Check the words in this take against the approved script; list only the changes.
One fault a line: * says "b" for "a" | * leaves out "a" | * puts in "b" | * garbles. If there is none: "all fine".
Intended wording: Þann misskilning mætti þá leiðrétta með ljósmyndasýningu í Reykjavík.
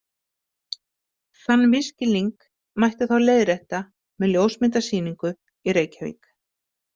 all fine